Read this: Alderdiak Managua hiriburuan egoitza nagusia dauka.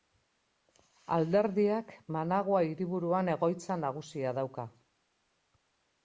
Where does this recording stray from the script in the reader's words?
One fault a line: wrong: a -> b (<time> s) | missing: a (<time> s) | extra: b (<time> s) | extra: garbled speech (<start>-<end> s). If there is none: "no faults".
no faults